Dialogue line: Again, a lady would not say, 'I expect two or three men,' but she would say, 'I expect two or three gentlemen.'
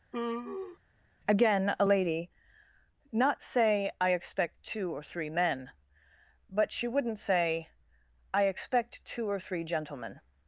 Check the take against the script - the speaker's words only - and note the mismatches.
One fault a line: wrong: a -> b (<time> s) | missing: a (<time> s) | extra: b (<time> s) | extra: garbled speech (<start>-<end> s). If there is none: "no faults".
missing: would (2.3 s)
wrong: would -> wouldn't (6.9 s)